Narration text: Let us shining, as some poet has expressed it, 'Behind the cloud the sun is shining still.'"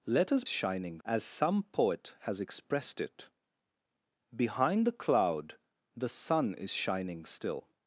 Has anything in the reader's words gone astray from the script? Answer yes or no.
no